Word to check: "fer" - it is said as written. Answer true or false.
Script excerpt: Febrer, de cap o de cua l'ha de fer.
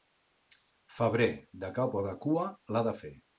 true